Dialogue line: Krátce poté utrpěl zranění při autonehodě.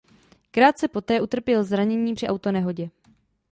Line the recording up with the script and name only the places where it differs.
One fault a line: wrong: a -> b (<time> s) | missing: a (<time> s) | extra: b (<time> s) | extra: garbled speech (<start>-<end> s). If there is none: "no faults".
no faults